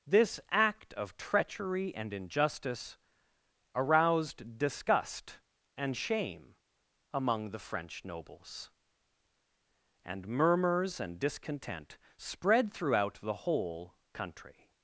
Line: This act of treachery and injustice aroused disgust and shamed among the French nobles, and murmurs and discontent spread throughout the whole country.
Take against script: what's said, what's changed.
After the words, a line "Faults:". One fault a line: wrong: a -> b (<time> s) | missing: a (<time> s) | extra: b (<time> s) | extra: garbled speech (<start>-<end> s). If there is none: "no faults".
This act of treachery and injustice aroused disgust and shame among the French nobles, and murmurs and discontent spread throughout the whole country.
Faults:
wrong: shamed -> shame (5.9 s)